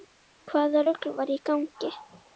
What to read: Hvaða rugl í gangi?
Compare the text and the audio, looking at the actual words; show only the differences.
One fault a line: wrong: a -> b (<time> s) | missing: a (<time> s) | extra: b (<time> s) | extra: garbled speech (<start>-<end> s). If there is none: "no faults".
extra: var (1.2 s)